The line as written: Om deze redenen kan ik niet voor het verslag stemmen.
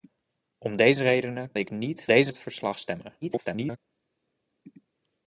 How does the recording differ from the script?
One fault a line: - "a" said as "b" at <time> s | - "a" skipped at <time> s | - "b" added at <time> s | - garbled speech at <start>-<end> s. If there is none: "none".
- "kan" skipped at 1.5 s
- "voor" said as "deze" at 2.0 s
- garbled speech at 3.2-3.8 s